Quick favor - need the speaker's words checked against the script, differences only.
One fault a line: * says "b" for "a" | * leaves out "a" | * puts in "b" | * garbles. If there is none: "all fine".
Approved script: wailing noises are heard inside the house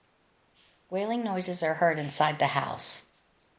all fine